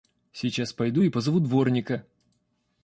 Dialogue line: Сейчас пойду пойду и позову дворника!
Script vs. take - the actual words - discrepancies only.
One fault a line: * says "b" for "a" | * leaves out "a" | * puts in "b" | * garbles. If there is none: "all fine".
* leaves out "пойду"